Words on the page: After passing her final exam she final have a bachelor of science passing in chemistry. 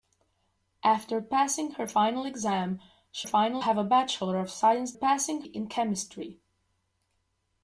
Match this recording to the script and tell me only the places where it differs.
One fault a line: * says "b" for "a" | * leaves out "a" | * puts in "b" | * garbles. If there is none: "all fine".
all fine